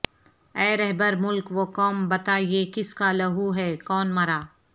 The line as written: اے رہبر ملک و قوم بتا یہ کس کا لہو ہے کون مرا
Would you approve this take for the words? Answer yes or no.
yes